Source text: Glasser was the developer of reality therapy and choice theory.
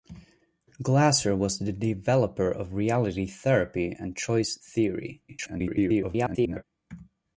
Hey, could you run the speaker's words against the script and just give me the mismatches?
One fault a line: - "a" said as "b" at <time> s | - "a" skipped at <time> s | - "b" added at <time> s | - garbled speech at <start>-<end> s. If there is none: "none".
- garbled speech at 5.3-6.6 s